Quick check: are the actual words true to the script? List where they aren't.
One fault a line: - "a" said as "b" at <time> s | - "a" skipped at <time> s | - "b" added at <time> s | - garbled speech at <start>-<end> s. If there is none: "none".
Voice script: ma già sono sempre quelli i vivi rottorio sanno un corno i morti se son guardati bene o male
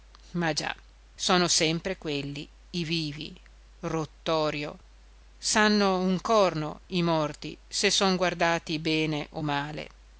none